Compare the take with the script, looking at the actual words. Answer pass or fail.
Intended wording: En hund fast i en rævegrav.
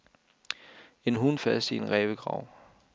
pass